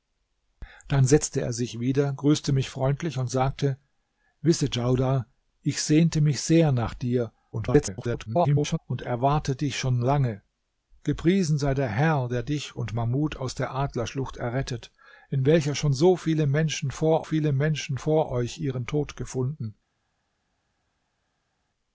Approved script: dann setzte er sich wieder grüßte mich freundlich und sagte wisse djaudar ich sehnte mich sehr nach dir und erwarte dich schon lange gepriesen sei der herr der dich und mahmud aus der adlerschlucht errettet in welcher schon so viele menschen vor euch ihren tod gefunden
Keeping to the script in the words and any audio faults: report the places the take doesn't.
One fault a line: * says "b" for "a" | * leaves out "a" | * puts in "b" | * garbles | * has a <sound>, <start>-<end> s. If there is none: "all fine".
* garbles
* puts in "viele menschen vor"